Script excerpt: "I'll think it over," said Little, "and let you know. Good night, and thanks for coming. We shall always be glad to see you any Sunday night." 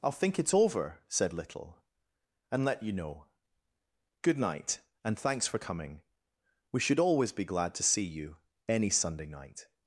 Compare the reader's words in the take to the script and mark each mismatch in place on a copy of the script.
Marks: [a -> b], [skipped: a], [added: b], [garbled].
"I'll think it over," said Little, "and let you know. Good night, and thanks for coming. We [shall -> should] always be glad to see you any Sunday night."